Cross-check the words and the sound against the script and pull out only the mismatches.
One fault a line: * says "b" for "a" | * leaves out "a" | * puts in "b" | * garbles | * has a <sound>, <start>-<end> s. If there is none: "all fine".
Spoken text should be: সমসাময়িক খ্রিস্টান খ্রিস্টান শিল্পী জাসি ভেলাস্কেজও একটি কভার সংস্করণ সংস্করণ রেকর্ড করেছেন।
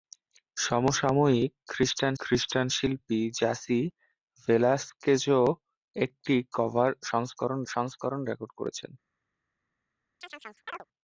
* has a chirp, 10.2-10.8 s